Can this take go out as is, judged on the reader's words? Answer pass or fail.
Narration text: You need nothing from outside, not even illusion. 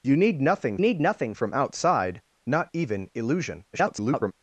fail